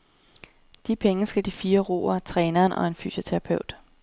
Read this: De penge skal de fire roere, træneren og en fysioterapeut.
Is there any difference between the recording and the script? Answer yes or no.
no